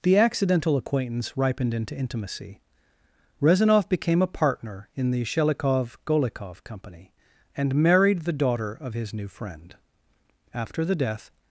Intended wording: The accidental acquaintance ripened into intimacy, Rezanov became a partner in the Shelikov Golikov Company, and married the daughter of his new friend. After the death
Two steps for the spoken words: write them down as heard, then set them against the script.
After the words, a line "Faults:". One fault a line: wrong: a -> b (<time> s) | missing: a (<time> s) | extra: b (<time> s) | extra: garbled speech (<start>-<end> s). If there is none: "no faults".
The accidental acquaintance ripened into intimacy, Rezanov became a partner in the Shelikov Golikov Company, and married the daughter of his new friend. After the death
Faults:
no faults